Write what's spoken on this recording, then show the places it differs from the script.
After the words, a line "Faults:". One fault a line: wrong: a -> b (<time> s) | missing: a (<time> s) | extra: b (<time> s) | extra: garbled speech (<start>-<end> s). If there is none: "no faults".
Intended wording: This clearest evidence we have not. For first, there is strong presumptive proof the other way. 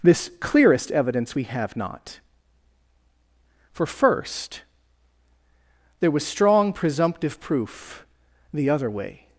This clearest evidence we have not. For first, there was strong presumptive proof the other way.
Faults:
wrong: is -> was (6.1 s)